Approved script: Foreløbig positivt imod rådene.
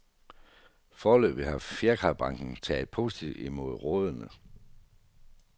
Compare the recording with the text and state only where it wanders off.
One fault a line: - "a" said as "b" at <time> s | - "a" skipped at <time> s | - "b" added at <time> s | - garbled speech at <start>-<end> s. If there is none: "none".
- "har fjerkræbranchen taget" added at 1.4 s